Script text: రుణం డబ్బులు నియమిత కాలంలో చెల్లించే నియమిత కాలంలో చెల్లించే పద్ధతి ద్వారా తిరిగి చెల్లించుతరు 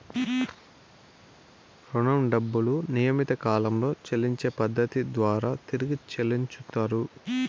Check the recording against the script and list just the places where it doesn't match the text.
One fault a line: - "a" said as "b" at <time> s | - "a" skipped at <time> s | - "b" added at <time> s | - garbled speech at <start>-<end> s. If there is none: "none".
- "నియమిత కాలంలో చెల్లించే" skipped at 4.5 s